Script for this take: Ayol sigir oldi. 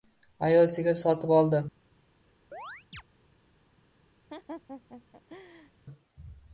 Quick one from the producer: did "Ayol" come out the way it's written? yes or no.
yes